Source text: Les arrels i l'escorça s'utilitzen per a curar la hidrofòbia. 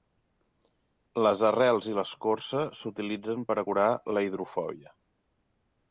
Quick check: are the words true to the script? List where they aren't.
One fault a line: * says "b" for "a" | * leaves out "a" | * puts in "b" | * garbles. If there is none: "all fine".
all fine